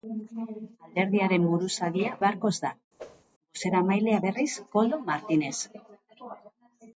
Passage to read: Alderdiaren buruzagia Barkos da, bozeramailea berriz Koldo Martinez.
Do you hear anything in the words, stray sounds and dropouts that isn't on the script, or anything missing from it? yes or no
yes